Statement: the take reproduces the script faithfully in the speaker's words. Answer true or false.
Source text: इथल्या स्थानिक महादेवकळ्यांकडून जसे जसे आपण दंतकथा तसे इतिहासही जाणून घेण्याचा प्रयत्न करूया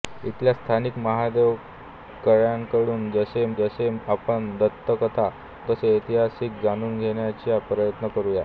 true